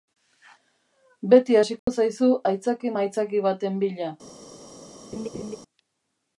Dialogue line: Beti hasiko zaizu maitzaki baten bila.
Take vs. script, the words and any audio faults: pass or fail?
fail